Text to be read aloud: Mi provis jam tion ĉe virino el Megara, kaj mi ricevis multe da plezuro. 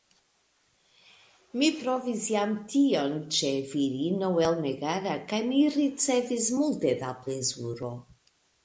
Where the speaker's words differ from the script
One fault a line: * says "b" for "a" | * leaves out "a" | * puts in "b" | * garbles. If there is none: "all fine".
all fine